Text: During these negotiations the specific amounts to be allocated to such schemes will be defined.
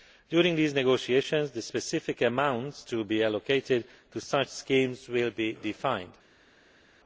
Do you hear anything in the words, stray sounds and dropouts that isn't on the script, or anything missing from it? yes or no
no